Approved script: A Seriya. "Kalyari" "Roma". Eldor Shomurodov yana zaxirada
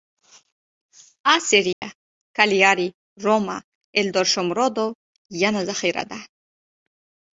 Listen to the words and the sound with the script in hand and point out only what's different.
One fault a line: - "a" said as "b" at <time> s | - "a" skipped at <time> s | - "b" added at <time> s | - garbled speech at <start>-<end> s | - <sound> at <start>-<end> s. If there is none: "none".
- dropout at 1.7-1.8 s